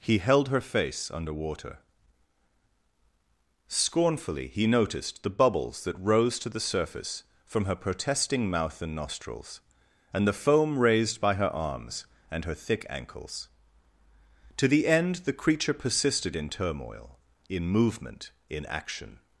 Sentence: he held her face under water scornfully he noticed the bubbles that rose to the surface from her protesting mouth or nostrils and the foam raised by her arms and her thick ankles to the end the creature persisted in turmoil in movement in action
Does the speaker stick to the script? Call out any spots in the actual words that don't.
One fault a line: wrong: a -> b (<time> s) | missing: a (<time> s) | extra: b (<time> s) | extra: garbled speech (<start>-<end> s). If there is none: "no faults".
wrong: or -> and (8.8 s)